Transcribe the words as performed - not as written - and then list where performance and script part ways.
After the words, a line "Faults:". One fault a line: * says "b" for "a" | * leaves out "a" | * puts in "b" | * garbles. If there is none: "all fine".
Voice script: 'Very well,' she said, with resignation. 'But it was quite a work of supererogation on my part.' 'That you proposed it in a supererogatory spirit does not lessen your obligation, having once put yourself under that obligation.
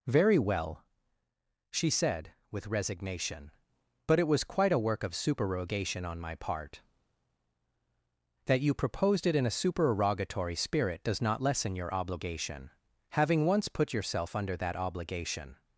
'Very well,' she said, with resignation. 'But it was quite a work of supererogation on my part.' 'That you proposed it in a supererogatory spirit does not lessen your obligation, having once put yourself under that obligation.
Faults:
all fine